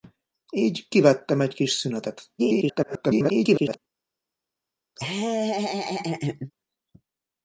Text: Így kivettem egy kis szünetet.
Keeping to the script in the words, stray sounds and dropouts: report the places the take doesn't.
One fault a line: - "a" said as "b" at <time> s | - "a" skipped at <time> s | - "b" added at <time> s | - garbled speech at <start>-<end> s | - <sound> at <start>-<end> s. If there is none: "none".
- garbled speech at 2.4-3.8 s
- laugh at 5.0-6.5 s